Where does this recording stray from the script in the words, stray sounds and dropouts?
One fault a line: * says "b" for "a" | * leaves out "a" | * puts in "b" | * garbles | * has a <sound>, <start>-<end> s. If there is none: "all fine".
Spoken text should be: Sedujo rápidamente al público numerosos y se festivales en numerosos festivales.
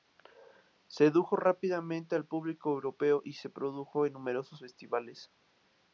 * says "europeo" for "numerosos"
* says "produjo" for "festivales"